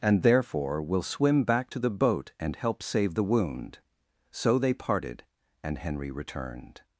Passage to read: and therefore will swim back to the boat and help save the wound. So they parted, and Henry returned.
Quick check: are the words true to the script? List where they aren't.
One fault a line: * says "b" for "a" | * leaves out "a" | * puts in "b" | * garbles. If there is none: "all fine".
all fine